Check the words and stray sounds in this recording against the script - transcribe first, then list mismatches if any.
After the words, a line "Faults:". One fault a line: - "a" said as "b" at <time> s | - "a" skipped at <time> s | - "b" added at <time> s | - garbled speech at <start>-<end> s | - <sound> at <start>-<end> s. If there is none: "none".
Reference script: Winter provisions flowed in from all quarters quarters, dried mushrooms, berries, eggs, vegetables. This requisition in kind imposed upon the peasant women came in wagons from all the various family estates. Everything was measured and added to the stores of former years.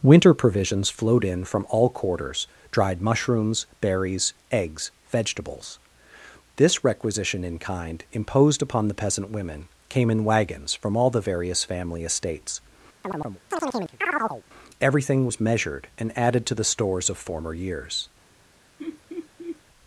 Winter provisions flowed in from all quarters, dried mushrooms, berries, eggs, vegetables. This requisition in kind imposed upon the peasant women came in wagons from all the various family estates. Everything was measured and added to the stores of former years.
Faults:
- "quarters" skipped at 2.5 s
- chirp at 13.0-14.4 s
- laugh at 18.8-19.6 s